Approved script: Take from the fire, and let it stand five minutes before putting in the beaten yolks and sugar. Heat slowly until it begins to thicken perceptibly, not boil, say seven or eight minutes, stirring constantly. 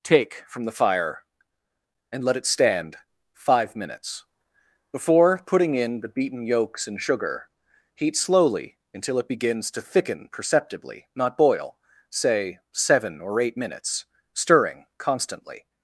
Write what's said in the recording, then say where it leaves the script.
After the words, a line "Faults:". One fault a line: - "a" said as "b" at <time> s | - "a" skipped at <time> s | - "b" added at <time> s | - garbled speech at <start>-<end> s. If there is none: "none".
Take from the fire, and let it stand five minutes before putting in the beaten yolks and sugar. Heat slowly until it begins to thicken perceptibly, not boil, say seven or eight minutes, stirring constantly.
Faults:
none